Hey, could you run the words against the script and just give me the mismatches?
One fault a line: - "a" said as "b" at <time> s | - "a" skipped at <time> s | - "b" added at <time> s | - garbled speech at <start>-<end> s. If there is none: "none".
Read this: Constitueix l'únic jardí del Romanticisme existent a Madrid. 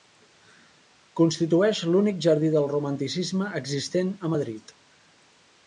none